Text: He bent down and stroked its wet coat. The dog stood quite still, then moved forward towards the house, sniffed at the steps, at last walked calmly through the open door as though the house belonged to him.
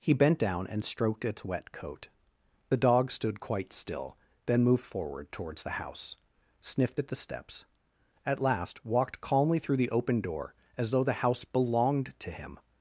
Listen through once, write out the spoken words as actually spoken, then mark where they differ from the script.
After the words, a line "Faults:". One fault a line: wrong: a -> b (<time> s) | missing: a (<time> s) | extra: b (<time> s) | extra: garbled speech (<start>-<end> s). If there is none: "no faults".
He bent down and stroked its wet coat. The dog stood quite still, then moved forward towards the house, sniffed at the steps, at last walked calmly through the open door as though the house belonged to him.
Faults:
no faults